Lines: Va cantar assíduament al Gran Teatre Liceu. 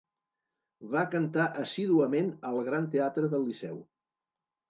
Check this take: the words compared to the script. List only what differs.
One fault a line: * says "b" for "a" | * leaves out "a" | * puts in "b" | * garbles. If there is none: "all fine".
* puts in "del"